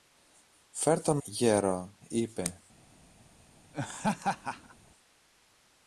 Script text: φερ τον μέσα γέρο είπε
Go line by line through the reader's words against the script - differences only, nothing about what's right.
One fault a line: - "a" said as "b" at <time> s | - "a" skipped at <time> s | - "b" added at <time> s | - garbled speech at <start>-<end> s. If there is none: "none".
- "μέσα" skipped at 1.2 s